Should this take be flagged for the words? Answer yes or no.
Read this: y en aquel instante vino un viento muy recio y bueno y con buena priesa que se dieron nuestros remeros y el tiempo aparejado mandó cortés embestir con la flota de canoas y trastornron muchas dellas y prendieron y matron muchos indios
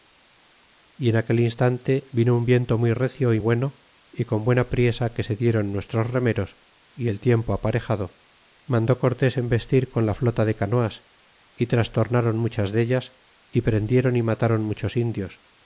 no